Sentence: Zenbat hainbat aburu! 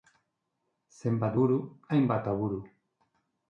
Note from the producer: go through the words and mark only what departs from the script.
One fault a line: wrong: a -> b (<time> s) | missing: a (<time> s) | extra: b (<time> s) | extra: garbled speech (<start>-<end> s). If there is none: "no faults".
extra: buru (1.4 s)